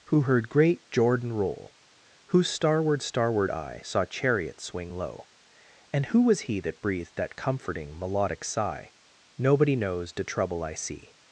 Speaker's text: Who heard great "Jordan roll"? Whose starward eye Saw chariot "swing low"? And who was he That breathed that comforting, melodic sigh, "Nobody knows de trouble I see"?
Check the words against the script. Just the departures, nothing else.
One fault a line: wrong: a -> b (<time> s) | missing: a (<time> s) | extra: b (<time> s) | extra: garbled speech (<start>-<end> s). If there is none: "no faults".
extra: starward (3.0 s)